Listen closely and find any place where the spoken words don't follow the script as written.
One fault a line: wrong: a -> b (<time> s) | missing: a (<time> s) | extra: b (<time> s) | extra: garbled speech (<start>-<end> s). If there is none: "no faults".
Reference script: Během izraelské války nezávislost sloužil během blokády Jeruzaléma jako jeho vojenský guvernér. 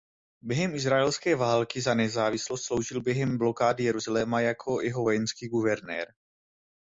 extra: za (1.8 s)